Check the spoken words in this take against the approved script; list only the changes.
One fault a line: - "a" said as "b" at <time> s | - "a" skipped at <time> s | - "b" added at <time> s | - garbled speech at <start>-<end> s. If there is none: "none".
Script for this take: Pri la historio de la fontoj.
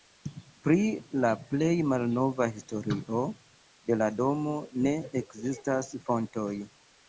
- "plej malnova" added at 1.5 s
- "domo ne ekzistas" added at 4.2 s